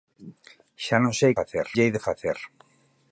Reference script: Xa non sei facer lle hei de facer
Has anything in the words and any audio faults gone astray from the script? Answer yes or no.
no